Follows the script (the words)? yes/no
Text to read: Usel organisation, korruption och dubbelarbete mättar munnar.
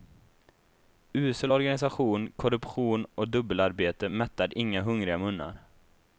no